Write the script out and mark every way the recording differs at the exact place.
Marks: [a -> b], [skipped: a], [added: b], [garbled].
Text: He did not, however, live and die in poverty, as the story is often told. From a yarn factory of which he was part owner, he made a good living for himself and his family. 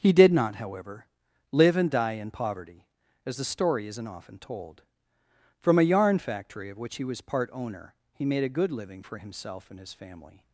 He did not, however, live and die in poverty, as the story [is -> isn't] often told. From a yarn factory of which he was part owner, he made a good living for himself and his family.